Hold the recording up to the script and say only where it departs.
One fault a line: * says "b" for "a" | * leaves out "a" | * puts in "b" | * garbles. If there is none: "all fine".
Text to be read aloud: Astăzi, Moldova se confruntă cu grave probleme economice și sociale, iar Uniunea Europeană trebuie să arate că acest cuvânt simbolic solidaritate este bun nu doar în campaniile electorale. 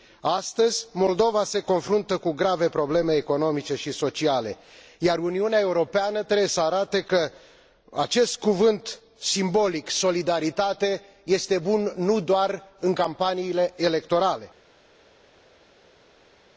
all fine